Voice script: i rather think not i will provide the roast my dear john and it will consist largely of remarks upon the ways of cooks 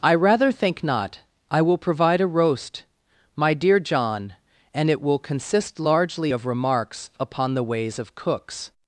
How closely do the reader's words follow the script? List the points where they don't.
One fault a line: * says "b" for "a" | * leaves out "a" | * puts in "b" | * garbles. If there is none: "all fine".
* says "a" for "the"